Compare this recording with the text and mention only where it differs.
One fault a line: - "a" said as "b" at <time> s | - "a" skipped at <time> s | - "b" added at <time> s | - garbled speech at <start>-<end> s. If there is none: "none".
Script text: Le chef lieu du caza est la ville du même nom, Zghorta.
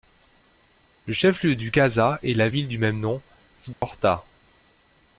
none